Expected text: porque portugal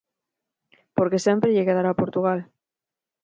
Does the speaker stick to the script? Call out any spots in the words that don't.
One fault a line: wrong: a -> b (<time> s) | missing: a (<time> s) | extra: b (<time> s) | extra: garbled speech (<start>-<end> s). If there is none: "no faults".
extra: sempre lle quedará (1.3 s)